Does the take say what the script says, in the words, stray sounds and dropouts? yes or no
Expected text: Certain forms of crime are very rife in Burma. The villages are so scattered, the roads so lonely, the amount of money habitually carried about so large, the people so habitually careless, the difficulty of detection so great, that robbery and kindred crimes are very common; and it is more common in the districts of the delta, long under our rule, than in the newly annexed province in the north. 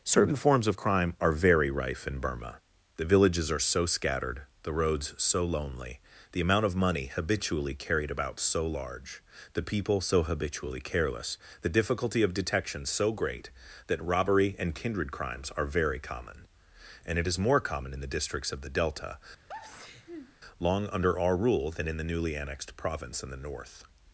no